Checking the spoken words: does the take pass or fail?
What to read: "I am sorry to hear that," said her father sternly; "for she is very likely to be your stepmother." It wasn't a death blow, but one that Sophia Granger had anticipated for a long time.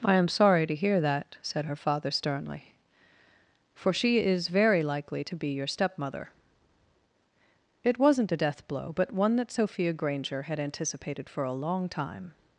pass